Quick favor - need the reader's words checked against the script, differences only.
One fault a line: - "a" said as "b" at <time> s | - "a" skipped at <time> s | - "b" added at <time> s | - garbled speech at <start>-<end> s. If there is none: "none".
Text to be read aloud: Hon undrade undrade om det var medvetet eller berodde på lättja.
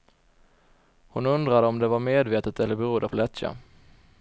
- "undrade" skipped at 1.7 s